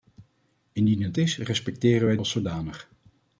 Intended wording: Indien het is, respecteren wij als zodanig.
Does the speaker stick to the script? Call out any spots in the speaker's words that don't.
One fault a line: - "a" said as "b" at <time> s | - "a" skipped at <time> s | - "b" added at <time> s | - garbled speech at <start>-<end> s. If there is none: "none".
none